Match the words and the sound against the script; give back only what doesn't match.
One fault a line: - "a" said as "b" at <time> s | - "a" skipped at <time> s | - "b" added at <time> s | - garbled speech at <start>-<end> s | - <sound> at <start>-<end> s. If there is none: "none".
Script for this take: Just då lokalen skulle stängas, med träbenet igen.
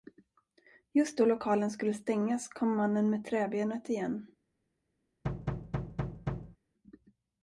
- "kom mannen" added at 2.5 s
- thud at 5.2-6.6 s